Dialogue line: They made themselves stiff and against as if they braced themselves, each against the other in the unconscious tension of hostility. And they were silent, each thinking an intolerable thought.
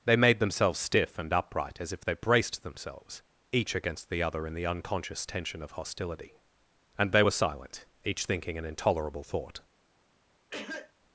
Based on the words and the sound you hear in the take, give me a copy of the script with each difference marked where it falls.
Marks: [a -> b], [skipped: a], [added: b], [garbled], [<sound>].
They made themselves stiff and [against -> upright] as if they braced themselves, each against the other in the unconscious tension of hostility. And they were silent, each thinking an intolerable thought. [cough]